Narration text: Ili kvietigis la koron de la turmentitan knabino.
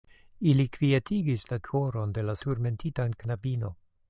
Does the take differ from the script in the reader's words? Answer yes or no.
no